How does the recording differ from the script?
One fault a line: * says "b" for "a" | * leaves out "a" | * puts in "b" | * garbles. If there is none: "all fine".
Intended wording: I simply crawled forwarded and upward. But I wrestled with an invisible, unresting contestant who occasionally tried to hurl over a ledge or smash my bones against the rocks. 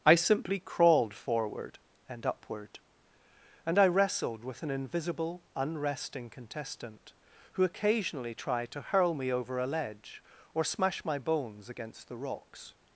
* says "forward" for "forwarded"
* says "And" for "But"
* puts in "me"